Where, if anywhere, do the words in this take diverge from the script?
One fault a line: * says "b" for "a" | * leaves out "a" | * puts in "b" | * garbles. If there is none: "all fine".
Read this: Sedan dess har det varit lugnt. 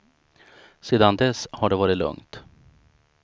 all fine